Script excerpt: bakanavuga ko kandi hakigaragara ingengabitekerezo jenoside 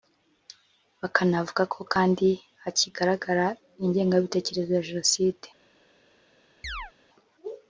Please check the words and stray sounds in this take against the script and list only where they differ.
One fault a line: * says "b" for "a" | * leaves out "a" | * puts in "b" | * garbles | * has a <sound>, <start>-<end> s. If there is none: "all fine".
* puts in "ya"
* has a chirp, 6.6-6.9 s